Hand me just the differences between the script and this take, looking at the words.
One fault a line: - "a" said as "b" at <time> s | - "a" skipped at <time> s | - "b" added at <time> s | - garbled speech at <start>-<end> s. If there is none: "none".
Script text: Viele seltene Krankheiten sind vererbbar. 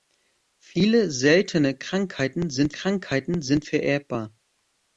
- "Krankheiten sind" added at 2.7 s